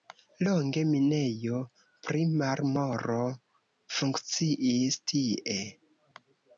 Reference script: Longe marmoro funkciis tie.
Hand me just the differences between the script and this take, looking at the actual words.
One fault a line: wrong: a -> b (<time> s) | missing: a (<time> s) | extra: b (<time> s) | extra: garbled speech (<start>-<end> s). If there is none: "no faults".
extra: minejo pri (0.9 s)